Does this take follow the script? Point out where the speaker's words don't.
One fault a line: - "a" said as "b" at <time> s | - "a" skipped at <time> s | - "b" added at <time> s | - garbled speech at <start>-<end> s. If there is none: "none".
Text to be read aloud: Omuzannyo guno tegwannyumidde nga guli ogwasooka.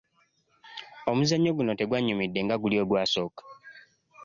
none